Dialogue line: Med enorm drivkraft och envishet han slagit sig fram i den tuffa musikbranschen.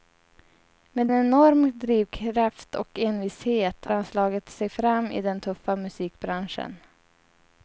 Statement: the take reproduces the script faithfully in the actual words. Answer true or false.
true